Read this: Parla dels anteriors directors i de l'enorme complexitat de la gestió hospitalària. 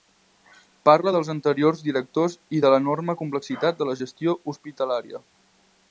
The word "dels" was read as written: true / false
true